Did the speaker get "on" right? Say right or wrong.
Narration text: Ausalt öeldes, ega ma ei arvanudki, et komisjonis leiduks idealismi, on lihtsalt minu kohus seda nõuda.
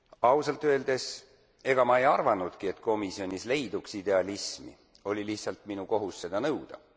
wrong